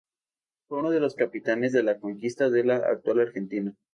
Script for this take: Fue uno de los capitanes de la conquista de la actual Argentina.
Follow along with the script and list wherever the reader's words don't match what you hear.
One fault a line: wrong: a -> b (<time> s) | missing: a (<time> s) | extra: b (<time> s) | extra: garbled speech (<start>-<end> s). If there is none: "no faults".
no faults